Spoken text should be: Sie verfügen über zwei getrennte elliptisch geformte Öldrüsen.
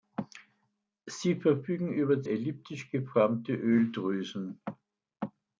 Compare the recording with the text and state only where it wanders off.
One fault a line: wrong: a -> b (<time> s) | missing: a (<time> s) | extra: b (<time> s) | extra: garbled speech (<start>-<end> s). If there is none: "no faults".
missing: zwei getrennte (2.2 s)